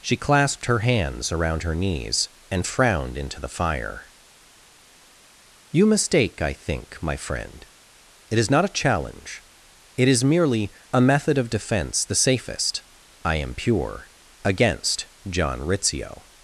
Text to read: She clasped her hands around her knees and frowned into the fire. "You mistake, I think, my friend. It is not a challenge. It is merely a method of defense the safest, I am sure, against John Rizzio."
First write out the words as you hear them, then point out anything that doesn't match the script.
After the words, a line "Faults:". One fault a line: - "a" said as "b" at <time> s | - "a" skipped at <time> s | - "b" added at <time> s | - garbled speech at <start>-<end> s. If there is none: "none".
She clasped her hands around her knees and frowned into the fire. "You mistake, I think, my friend. It is not a challenge. It is merely a method of defense the safest, I am pure, against John Rizzio."
Faults:
- "sure" said as "pure" at 13.5 s